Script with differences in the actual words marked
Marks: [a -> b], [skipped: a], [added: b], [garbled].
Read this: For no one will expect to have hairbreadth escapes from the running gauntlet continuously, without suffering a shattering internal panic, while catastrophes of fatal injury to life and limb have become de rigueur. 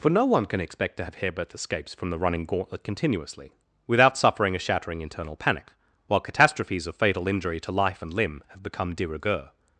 For no one [will -> can] expect to have hairbreadth escapes from the running gauntlet continuously, without suffering a shattering internal panic, while catastrophes of fatal injury to life and limb have become de rigueur.